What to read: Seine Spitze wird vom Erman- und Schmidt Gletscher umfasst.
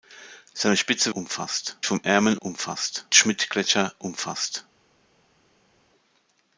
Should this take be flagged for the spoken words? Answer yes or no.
yes